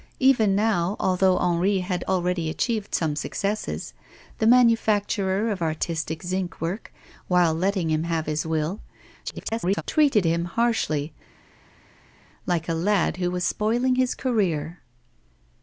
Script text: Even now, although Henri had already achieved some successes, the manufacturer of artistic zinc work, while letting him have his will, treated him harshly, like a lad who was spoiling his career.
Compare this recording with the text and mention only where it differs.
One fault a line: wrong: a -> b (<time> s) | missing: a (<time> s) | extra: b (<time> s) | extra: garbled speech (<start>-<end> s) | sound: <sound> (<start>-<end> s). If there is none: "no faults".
extra: garbled speech (9.3-9.8 s)